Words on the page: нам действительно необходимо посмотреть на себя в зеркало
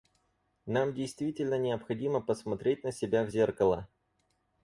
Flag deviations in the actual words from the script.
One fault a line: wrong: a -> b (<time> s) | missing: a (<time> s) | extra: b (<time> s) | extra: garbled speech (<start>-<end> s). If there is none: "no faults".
no faults